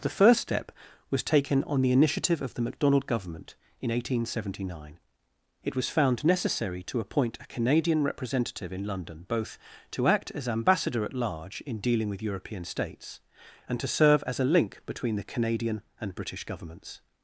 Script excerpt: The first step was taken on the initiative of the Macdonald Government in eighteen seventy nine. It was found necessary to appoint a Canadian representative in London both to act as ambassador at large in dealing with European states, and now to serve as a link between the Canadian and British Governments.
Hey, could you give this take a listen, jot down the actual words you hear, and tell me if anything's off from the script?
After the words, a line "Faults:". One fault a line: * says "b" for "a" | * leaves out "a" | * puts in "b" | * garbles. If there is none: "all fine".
The first step was taken on the initiative of the Macdonald Government in eighteen seventy nine. It was found necessary to appoint a Canadian representative in London both to act as ambassador at large in dealing with European states, and to serve as a link between the Canadian and British Governments.
Faults:
* leaves out "now"